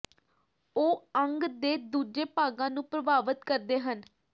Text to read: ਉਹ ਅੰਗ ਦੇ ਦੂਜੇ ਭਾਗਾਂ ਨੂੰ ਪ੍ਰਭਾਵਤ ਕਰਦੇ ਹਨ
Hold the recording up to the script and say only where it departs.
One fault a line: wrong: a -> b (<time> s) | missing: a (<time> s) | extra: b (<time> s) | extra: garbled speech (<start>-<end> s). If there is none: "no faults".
no faults